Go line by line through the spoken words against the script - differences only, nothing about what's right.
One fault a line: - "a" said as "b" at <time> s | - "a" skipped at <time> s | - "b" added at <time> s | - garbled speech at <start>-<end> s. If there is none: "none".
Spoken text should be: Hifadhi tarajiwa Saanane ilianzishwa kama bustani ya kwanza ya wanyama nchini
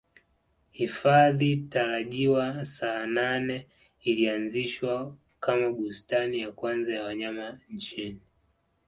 none